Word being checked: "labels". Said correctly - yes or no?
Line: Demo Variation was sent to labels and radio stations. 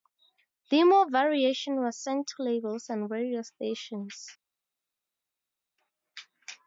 yes